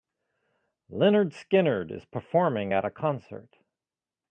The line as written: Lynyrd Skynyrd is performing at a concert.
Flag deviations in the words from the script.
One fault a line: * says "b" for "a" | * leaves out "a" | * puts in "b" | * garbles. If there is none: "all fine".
all fine